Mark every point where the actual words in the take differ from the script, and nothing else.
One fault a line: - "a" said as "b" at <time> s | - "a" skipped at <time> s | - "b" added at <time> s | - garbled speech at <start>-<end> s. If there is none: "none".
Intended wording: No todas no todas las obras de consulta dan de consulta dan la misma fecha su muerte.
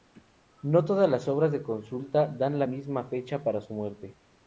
- "no todas" skipped at 1.1 s
- "de consulta dan" skipped at 2.6 s
- "para" added at 3.4 s